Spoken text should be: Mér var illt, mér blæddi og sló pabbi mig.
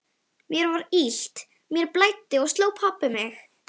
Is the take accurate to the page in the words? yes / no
yes